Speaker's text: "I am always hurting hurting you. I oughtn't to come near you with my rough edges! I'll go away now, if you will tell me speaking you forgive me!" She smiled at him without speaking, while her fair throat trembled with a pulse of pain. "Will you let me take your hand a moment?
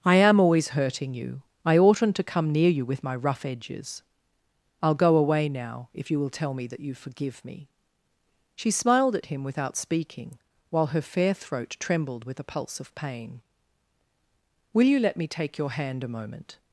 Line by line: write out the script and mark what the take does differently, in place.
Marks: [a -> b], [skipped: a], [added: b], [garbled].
"I am always hurting [skipped: hurting] you. I oughtn't to come near you with my rough edges! I'll go away now, if you will tell me [speaking -> that] you forgive me!" She smiled at him without speaking, while her fair throat trembled with a pulse of pain. "Will you let me take your hand a moment?